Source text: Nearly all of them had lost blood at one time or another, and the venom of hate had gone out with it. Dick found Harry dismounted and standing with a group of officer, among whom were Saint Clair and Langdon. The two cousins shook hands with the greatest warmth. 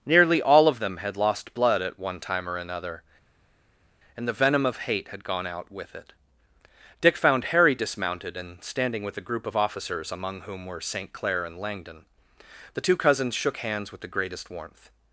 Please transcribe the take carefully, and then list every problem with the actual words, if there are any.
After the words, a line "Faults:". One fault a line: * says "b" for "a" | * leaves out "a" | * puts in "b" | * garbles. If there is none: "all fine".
Nearly all of them had lost blood at one time or another, and the venom of hate had gone out with it. Dick found Harry dismounted and standing with a group of officers, among whom were Saint Clair and Langdon. The two cousins shook hands with the greatest warmth.
Faults:
* says "officers" for "officer"